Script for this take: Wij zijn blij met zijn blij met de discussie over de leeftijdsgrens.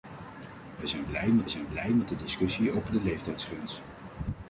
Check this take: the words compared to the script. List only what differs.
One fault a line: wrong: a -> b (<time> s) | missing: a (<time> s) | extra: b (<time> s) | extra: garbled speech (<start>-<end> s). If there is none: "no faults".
no faults